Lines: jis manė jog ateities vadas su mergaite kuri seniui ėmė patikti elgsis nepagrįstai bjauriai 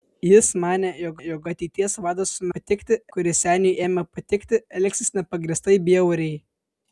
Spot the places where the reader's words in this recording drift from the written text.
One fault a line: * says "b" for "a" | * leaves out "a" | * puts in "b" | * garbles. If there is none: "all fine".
* puts in "jog"
* says "patikti" for "mergaite"